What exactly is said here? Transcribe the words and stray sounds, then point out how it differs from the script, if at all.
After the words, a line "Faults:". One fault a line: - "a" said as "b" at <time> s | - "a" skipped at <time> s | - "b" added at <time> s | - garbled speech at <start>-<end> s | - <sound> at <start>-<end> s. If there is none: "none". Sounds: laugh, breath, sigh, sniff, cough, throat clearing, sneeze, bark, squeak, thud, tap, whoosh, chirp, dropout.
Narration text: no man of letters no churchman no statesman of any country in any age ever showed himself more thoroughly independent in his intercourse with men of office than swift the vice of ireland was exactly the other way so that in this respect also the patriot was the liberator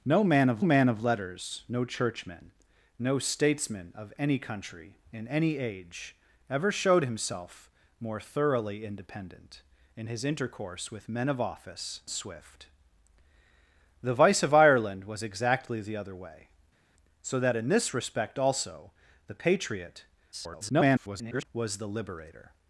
no man of man of letters no churchman no statesman of any country in any age ever showed himself more thoroughly independent in his intercourse with men of office swift the vice of ireland was exactly the other way so that in this respect also the patriot [garbled] was the liberator
Faults:
- "man of" added at 0.6 s
- "than" skipped at 12.0 s
- garbled speech at 20.3-21.5 s